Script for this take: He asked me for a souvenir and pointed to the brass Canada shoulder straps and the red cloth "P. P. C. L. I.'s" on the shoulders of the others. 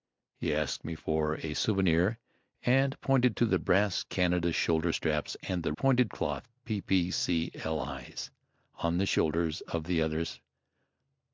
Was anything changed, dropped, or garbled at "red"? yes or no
yes